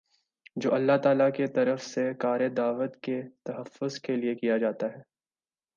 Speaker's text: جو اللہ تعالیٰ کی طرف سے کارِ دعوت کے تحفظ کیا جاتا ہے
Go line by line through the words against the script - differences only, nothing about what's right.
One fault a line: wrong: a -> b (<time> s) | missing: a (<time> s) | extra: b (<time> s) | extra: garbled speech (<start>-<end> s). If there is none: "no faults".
extra: کے لیے (4.0 s)